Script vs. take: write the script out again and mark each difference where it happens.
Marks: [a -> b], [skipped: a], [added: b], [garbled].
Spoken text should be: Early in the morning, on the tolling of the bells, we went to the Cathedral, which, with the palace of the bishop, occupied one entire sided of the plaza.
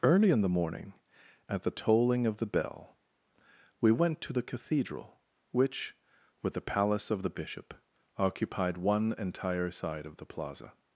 Early in the morning, [on -> at] the tolling of the [bells, -> bell] we went to the Cathedral, which, with the palace of the bishop, occupied one entire [sided -> side] of the plaza.